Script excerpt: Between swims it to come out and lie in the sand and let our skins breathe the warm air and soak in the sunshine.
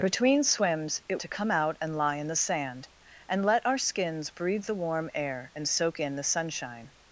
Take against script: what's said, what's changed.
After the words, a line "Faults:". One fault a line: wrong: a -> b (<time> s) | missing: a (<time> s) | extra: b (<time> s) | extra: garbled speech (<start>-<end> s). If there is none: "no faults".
Between swims it to come out and lie in the sand and let our skins breathe the warm air and soak in the sunshine.
Faults:
no faults